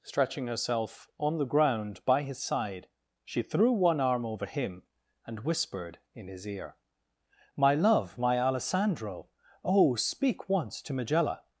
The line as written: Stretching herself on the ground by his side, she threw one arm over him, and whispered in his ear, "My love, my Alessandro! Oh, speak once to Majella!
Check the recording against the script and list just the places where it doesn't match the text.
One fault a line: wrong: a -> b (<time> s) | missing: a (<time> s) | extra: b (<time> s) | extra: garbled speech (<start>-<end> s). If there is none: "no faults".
no faults